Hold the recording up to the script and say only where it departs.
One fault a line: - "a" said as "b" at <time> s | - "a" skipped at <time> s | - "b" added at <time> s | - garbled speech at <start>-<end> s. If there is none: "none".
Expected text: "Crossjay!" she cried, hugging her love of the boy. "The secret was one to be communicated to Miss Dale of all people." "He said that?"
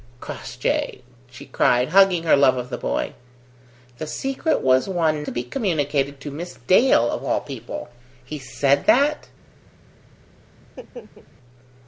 none